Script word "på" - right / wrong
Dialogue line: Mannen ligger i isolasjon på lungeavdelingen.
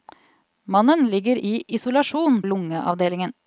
wrong